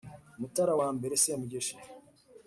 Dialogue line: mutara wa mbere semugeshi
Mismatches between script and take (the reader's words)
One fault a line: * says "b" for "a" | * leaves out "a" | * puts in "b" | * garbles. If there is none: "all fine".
all fine